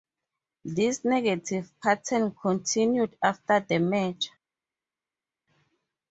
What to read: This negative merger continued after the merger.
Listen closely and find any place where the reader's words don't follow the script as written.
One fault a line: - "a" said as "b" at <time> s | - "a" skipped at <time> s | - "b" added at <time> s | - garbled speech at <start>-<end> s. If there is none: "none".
- "merger" said as "pattern" at 1.8 s